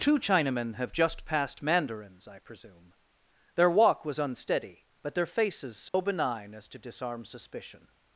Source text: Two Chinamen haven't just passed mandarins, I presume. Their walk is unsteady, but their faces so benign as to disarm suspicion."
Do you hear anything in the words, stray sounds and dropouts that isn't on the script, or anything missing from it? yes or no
yes